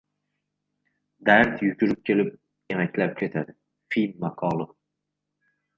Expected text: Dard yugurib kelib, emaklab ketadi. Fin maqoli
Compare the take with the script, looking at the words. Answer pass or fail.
pass